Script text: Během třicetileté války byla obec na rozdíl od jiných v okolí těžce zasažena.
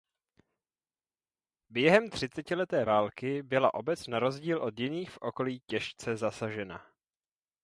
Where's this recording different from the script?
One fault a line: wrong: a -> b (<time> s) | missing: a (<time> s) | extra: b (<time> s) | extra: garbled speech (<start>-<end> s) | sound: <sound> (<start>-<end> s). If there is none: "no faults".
no faults